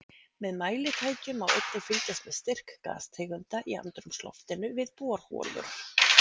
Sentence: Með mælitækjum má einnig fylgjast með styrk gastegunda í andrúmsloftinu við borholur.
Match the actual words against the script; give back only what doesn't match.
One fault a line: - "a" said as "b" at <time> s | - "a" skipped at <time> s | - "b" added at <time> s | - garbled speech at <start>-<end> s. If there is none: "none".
none